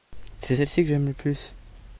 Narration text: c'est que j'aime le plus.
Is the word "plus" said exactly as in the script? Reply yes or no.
yes